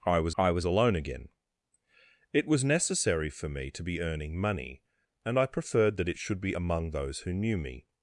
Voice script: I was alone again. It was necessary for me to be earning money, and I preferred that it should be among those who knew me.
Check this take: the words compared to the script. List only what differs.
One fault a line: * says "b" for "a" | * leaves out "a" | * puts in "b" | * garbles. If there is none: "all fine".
* puts in "I was"